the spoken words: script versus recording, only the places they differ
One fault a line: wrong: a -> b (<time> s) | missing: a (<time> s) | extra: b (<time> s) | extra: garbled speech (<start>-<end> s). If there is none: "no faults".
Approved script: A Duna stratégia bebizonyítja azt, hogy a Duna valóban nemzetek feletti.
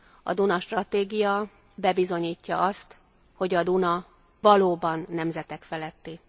no faults